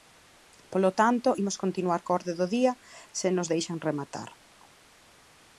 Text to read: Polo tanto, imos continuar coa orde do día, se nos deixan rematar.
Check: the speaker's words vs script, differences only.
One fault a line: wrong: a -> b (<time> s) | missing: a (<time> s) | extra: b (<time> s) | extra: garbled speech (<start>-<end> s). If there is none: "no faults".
no faults